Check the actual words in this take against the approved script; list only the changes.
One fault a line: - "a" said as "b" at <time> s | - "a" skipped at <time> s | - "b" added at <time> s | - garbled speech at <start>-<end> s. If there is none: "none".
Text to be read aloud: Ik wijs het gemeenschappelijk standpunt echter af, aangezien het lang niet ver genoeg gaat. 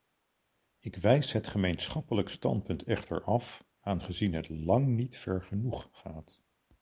none